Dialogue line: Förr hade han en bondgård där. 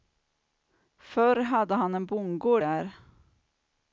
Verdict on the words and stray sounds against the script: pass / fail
pass